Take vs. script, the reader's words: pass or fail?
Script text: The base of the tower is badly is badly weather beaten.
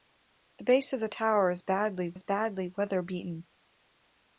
pass